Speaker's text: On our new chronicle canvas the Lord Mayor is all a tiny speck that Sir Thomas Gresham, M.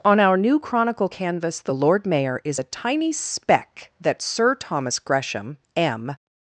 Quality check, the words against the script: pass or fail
fail